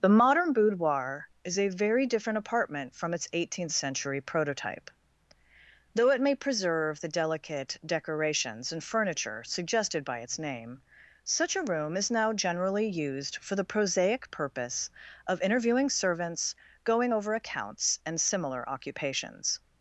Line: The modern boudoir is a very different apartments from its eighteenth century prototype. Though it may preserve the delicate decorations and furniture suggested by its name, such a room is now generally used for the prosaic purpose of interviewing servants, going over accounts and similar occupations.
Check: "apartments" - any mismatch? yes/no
yes